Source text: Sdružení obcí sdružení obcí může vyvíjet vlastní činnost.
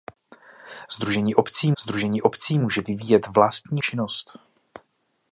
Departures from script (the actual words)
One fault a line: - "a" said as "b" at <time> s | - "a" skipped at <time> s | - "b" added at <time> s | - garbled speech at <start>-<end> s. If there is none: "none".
none